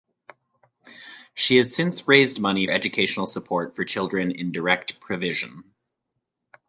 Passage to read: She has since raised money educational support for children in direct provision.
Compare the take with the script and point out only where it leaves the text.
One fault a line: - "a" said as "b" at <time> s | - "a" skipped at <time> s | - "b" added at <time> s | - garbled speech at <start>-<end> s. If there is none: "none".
none